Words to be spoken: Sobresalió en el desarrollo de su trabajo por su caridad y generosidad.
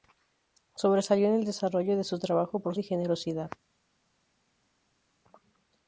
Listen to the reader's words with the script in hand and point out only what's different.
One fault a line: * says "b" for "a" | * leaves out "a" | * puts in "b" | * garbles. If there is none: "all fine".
* leaves out "su caridad"